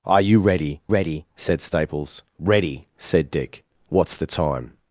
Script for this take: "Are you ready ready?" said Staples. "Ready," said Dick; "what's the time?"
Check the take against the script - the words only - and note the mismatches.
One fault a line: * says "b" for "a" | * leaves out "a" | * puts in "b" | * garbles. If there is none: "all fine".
all fine